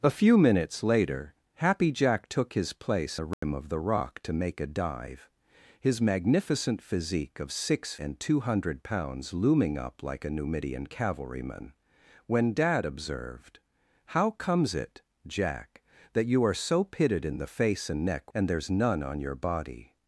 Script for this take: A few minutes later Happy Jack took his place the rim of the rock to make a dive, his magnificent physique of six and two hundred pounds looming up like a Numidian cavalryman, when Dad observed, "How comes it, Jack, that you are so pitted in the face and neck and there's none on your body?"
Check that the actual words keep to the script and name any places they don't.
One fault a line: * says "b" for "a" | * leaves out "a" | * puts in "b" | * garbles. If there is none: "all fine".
all fine